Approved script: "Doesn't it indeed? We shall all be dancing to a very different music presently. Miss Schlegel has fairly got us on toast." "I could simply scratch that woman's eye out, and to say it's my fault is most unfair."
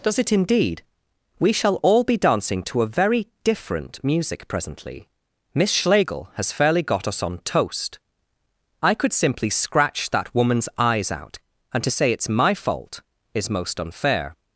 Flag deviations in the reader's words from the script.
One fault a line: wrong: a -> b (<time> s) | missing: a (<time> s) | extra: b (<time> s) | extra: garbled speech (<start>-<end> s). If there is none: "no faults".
wrong: Doesn't -> Does (0.0 s)
wrong: eye -> eyes (10.8 s)